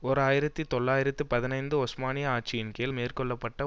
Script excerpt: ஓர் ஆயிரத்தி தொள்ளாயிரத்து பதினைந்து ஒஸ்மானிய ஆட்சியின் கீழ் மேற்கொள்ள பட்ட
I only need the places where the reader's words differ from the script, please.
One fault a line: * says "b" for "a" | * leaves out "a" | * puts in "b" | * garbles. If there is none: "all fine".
all fine